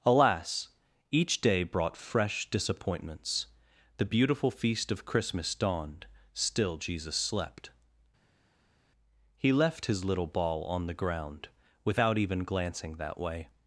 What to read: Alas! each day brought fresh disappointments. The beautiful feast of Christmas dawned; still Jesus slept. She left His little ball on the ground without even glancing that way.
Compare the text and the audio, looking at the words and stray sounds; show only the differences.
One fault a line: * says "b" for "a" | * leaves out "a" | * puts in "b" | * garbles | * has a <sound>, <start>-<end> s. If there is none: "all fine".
* says "He" for "She"